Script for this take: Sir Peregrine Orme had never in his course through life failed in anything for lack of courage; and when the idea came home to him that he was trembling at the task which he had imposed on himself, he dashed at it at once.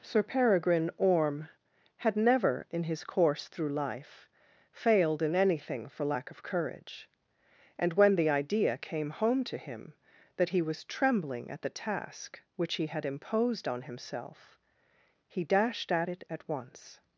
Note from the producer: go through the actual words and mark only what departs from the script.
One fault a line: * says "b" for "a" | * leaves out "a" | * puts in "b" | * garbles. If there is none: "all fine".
all fine